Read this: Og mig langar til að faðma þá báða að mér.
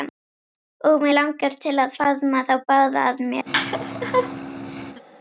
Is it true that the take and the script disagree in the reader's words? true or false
false